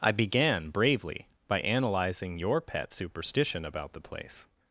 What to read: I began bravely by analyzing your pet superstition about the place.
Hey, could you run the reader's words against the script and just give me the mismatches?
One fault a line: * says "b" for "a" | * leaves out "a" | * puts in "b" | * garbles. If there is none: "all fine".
all fine